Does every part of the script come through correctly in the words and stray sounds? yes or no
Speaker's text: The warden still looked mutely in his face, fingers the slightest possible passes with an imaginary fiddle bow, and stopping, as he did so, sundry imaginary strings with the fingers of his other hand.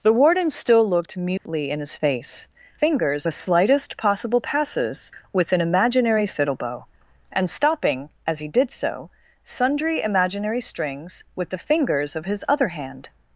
no